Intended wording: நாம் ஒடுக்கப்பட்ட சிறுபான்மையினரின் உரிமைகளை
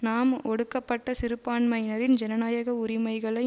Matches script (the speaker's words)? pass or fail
fail